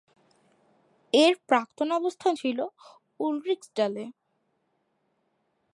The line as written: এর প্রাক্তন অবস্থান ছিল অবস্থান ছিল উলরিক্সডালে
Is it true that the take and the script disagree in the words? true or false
true